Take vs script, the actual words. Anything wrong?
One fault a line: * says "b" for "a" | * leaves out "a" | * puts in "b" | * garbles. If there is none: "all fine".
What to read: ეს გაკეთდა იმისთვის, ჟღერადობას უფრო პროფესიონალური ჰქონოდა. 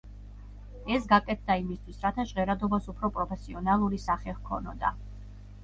* puts in "რათა"
* puts in "სახე"